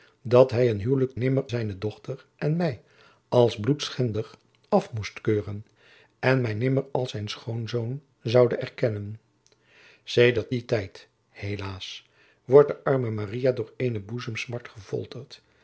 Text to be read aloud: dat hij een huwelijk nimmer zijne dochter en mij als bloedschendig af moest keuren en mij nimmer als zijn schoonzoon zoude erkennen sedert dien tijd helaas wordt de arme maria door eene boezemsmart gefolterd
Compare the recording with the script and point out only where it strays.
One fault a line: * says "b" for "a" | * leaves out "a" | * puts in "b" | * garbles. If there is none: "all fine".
all fine